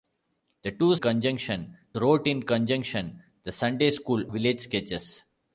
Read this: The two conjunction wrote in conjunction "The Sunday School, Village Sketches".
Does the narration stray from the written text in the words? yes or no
no